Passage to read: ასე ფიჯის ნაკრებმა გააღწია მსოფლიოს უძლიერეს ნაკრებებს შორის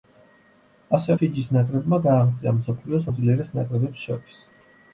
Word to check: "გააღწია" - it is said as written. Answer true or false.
true